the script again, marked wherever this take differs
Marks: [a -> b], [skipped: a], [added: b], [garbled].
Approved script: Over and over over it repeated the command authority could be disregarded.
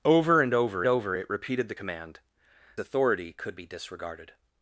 Over and over over it repeated the command authority could be disregarded.